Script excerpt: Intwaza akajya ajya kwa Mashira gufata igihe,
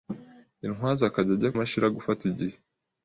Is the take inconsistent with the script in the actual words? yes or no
yes